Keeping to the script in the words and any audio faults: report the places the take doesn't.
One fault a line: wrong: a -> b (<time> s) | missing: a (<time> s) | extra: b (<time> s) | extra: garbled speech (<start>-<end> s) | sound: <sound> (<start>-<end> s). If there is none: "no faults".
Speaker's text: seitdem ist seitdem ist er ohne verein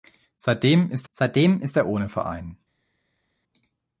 no faults